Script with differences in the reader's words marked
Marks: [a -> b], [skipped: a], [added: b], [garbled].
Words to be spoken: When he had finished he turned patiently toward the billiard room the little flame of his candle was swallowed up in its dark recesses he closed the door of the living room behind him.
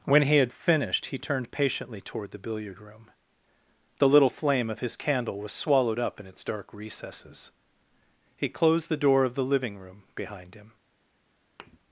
When he had finished he turned patiently toward the billiard room the little flame of his candle was swallowed up in its dark recesses he closed the door of the living room behind him.